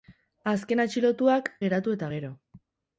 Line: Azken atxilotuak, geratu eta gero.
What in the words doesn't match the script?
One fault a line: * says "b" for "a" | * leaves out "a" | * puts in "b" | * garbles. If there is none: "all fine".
all fine